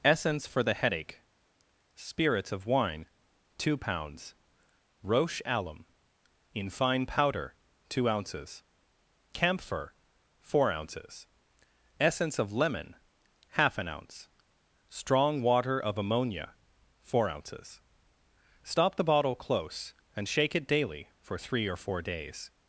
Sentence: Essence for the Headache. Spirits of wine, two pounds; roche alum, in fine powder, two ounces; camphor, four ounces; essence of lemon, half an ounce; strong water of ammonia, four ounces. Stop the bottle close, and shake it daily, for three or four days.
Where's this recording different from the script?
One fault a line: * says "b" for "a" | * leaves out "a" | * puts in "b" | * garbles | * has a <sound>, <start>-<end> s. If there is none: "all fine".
all fine